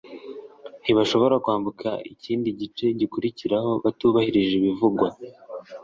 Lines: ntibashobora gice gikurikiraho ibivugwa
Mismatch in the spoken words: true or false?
true